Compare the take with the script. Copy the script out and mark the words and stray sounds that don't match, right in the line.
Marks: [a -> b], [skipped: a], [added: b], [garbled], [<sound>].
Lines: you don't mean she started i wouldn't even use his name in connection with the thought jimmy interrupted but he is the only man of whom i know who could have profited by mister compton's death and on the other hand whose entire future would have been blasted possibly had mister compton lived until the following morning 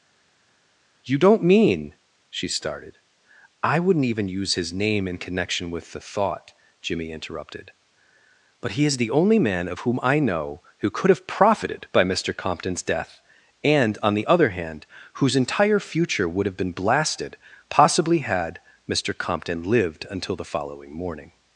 you don't mean she started i wouldn't even use his name in connection with the thought jimmy interrupted but he is the only man of whom i know who could have profited by mister compton's death and on the other hand whose entire future would have been blasted possibly had mister compton lived until the following morning